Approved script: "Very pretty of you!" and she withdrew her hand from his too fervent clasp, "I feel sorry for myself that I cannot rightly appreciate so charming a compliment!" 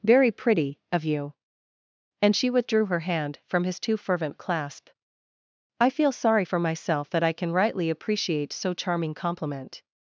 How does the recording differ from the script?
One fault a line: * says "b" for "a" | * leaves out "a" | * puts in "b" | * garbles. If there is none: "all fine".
* says "can" for "cannot"
* leaves out "a"